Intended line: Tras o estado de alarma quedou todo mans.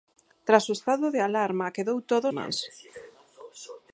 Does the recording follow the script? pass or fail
pass